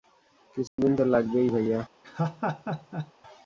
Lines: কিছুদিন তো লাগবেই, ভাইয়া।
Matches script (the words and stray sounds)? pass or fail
fail